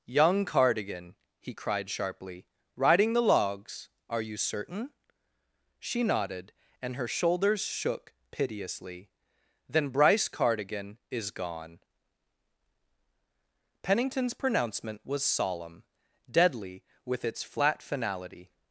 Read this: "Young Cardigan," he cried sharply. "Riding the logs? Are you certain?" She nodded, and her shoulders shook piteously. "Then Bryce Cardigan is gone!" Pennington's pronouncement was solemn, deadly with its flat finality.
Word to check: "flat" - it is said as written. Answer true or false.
true